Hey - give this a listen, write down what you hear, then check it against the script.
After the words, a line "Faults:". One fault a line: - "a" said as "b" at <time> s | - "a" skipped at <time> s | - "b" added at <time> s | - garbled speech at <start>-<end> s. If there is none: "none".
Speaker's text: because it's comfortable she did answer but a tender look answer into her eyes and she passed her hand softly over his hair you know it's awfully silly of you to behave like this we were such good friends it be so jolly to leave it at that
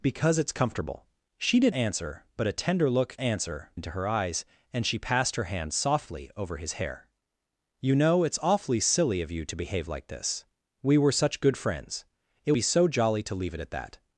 because it's comfortable she did answer but a tender look answer into her eyes and she passed her hand softly over his hair you know it's awfully silly of you to behave like this we were such good friends it be so jolly to leave it at that
Faults:
none